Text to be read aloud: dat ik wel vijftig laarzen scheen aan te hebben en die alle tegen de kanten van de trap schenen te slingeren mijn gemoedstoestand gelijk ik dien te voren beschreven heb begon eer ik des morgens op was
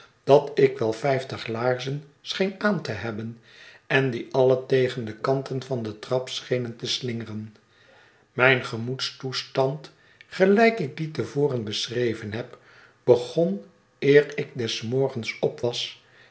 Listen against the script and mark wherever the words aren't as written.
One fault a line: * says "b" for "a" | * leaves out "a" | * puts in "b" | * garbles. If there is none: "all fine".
all fine